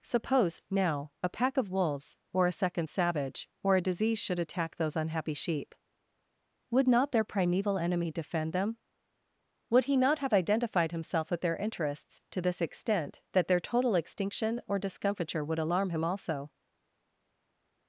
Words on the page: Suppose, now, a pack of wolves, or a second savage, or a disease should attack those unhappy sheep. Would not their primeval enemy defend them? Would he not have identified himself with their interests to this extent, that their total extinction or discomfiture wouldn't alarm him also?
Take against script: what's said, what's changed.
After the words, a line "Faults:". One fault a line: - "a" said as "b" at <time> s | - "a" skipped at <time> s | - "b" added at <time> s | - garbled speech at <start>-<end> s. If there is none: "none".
Suppose, now, a pack of wolves, or a second savage, or a disease should attack those unhappy sheep. Would not their primeval enemy defend them? Would he not have identified himself with their interests to this extent, that their total extinction or discomfiture would alarm him also?
Faults:
- "wouldn't" said as "would" at 15.4 s